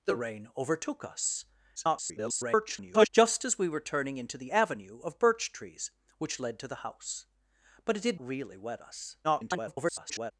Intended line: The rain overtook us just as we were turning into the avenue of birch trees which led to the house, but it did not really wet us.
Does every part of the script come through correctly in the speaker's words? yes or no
no